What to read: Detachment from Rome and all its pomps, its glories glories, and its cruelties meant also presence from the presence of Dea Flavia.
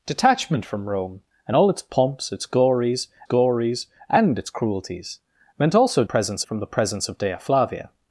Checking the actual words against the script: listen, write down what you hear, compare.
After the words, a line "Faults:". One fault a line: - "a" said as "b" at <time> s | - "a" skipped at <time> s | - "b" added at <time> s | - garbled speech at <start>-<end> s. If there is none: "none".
Detachment from Rome and all its pomps, its glories glories, and its cruelties meant also presence from the presence of Dea Flavia.
Faults:
none